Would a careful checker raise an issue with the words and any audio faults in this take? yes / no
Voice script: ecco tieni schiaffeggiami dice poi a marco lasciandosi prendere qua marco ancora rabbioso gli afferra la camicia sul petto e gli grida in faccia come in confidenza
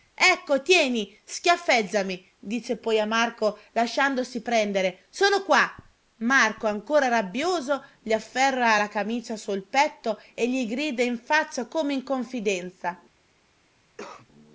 yes